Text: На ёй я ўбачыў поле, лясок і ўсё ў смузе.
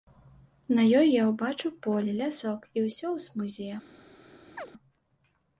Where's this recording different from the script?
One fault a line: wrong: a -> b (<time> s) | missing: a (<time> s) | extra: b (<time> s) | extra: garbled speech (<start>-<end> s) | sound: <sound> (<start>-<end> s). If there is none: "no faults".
sound: chirp (4.6-4.7 s)